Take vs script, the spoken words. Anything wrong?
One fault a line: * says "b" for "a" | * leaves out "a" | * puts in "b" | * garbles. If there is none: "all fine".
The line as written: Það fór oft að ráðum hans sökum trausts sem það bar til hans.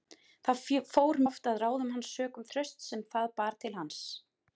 all fine